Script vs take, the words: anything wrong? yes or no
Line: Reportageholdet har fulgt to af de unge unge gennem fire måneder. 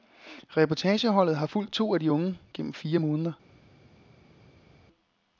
yes